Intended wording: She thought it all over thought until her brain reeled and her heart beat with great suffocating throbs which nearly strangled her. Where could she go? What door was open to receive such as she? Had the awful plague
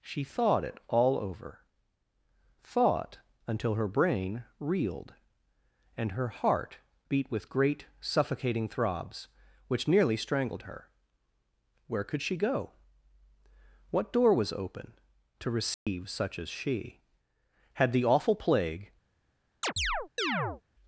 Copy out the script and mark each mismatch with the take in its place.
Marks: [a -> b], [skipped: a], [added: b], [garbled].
She thought it all over thought until her brain reeled and her heart beat with great suffocating throbs which nearly strangled her. Where could she go? What door was open to receive such as she? Had the awful plague